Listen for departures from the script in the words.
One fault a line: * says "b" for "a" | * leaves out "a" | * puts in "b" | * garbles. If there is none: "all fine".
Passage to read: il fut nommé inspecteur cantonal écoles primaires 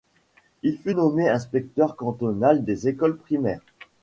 * puts in "des"